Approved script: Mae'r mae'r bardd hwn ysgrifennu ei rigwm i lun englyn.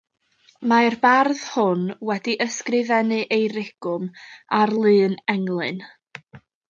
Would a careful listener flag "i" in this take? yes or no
yes